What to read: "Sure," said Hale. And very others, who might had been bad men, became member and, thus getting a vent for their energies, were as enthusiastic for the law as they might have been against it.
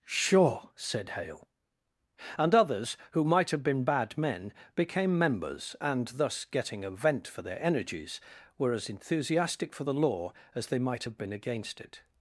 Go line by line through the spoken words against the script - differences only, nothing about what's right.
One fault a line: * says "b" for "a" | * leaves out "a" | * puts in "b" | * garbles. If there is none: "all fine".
* leaves out "very"
* says "have" for "had"
* says "members" for "member"